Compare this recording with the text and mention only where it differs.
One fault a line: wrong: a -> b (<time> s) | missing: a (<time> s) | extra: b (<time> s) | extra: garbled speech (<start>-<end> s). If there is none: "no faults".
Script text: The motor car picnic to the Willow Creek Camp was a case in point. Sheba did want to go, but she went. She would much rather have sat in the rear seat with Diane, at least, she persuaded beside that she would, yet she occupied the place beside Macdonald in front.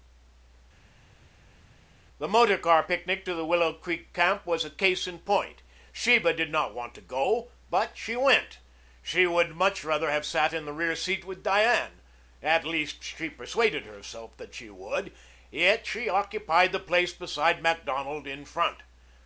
extra: not (6.5 s)
wrong: beside -> herself (13.8 s)